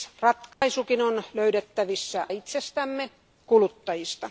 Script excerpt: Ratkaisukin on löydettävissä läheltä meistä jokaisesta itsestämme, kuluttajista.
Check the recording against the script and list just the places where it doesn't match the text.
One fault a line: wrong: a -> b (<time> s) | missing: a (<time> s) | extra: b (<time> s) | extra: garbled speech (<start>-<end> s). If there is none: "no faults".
missing: läheltä meistä jokaisesta (2.3 s)